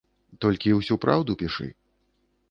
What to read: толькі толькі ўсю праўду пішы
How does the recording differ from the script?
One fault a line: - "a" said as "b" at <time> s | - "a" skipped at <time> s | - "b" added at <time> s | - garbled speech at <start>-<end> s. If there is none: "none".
- "толькі" skipped at 0.7 s